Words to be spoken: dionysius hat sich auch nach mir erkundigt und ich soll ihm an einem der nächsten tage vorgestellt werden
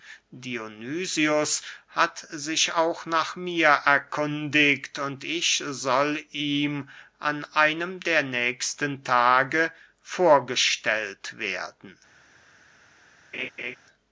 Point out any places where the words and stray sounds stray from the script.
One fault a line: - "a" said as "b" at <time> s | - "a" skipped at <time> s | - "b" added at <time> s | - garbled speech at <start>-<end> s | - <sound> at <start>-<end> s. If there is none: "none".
- laugh at 13.3-13.8 s